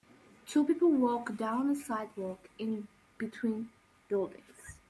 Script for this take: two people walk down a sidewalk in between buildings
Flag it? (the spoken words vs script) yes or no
no